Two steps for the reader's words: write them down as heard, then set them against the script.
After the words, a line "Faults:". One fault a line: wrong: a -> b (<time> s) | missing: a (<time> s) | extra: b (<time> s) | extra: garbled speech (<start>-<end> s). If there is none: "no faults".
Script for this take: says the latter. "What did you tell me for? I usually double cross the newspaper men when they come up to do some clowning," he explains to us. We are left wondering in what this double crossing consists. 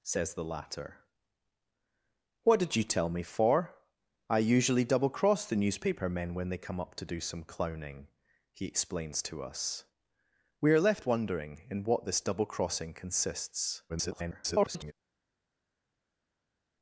says the latter. "What did you tell me for? I usually double cross the newspaper men when they come up to do some clowning," he explains to us. We are left wondering in what this double crossing consists. [garbled]
Faults:
extra: garbled speech (13.9-14.9 s)